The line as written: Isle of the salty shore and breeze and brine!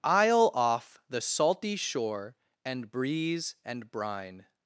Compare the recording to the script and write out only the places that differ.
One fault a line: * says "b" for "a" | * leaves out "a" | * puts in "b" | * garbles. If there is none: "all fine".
* says "off" for "of"